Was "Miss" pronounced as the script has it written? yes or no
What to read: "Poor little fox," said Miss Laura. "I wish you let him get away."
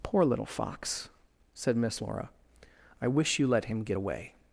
yes